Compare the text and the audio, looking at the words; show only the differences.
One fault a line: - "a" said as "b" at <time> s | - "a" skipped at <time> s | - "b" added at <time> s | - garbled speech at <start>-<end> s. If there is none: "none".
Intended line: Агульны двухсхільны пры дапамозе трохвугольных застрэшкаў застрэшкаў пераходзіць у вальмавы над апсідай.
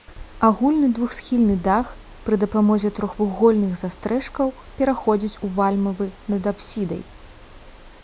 - "дах" added at 1.7 s
- "застрэшкаў" skipped at 4.6 s